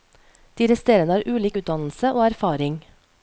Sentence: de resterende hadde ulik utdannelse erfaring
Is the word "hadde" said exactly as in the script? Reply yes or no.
no